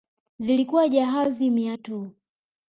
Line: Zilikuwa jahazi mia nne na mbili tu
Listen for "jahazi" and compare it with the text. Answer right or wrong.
right